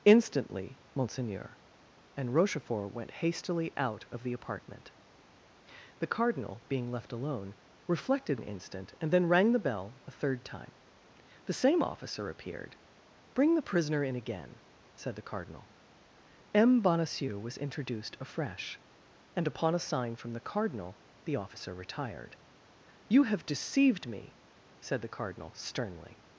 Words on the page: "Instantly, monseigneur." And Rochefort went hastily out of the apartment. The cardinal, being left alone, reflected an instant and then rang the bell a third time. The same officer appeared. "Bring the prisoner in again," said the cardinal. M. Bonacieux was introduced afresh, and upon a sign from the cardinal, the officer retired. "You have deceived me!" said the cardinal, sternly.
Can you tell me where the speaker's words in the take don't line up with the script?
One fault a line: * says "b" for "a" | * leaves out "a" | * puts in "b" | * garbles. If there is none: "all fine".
all fine